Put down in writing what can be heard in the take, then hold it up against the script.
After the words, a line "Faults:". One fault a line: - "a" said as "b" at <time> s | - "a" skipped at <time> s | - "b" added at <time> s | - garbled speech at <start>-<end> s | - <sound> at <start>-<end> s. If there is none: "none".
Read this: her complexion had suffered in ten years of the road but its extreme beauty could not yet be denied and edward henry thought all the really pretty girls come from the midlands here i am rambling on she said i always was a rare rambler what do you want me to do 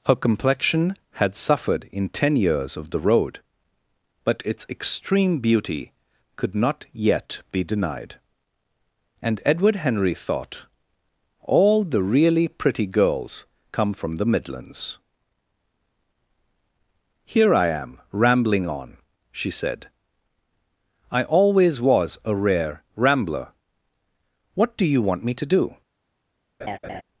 her complexion had suffered in ten years of the road but its extreme beauty could not yet be denied and edward henry thought all the really pretty girls come from the midlands here i am rambling on she said i always was a rare rambler what do you want me to do
Faults:
- laugh at 26.6-27.0 s